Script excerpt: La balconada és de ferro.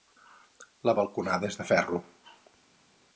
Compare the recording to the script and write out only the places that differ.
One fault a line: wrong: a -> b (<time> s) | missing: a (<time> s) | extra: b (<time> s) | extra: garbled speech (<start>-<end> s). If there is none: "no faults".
no faults